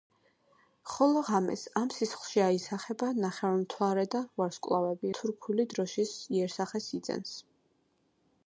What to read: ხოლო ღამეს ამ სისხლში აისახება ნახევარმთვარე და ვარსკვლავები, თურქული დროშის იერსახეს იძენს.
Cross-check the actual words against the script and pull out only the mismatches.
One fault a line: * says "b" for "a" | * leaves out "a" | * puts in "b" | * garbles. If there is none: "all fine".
all fine